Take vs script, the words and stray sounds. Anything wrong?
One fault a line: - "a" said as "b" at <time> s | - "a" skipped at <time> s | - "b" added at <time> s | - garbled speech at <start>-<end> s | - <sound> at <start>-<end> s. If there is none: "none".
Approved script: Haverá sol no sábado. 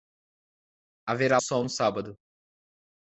none